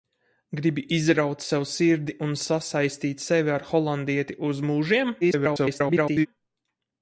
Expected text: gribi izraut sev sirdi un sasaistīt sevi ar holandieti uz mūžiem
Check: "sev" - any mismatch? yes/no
no